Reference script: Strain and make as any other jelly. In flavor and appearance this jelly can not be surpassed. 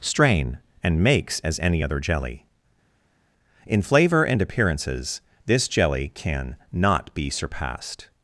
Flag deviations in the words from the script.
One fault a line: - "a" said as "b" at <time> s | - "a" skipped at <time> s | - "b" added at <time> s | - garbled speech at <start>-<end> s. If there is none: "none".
- "make" said as "makes" at 1.0 s
- "appearance" said as "appearances" at 4.4 s